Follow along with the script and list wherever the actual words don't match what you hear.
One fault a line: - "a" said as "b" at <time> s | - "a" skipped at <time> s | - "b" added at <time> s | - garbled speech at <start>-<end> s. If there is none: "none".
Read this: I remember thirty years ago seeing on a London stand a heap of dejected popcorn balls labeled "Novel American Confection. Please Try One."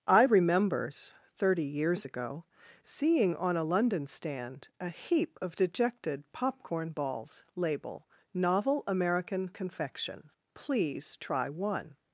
- "remember" said as "remembers" at 0.2 s
- "labeled" said as "label" at 7.5 s